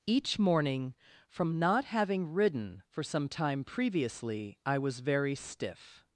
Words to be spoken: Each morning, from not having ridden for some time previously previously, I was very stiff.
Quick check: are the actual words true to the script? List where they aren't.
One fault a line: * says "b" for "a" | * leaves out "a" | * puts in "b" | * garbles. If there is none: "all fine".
* leaves out "previously"